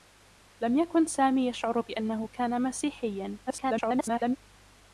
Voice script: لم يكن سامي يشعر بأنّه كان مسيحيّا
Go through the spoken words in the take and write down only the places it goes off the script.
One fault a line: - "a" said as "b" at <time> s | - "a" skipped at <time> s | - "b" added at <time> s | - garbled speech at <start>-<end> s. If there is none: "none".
- garbled speech at 3.5-4.4 s